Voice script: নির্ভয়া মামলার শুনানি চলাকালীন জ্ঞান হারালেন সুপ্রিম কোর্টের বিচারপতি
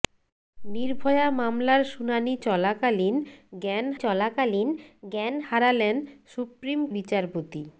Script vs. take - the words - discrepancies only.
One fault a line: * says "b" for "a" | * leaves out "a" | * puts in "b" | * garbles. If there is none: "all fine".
* puts in "চলাকালীন জ্ঞান"
* leaves out "কোর্টের"